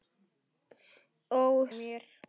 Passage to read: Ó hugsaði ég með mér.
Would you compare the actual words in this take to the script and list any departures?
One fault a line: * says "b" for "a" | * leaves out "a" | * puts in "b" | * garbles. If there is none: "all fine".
* leaves out "hugsaði ég með"